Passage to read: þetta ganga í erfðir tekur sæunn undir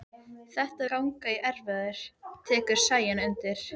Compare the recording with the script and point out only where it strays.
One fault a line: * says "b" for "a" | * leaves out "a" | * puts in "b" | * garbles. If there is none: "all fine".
all fine